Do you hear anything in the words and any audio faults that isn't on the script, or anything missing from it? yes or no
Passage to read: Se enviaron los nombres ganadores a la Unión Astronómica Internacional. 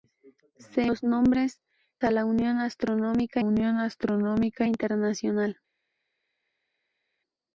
yes